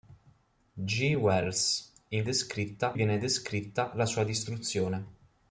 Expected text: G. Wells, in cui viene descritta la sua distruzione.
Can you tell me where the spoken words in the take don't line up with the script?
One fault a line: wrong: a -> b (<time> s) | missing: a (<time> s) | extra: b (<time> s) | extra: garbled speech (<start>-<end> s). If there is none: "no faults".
wrong: cui -> descritta (2.2 s)